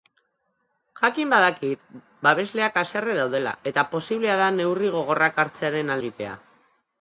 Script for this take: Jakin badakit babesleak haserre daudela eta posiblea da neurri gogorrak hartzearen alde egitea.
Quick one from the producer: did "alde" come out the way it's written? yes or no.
no